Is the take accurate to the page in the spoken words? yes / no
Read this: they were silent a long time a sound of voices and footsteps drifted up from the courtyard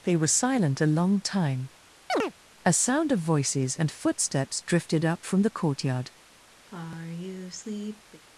yes